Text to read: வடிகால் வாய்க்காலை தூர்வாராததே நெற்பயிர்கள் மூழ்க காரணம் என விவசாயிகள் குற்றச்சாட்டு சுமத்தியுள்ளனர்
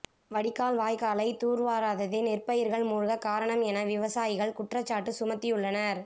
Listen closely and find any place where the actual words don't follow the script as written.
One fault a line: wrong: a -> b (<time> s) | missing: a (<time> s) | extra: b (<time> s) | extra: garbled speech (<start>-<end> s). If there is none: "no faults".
no faults